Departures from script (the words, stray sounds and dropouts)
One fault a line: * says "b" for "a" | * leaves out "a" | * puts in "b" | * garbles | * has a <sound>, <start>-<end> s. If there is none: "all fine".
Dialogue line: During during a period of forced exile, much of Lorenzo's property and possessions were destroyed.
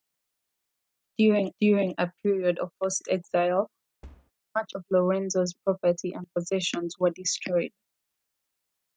* has a thud, 4.0-4.3 s